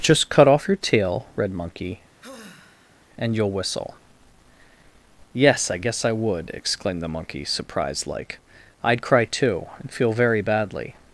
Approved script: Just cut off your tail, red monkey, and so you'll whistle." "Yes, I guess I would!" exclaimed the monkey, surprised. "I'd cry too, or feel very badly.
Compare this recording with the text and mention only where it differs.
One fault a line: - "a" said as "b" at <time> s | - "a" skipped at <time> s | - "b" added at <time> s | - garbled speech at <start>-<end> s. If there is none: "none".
- "so" skipped at 3.3 s
- "like" added at 8.1 s
- "or" said as "and" at 9.8 s